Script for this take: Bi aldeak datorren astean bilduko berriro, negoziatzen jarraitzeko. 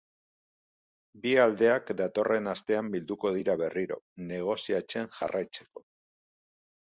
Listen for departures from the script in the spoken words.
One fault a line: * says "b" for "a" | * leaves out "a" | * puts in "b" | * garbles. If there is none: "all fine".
* puts in "dira"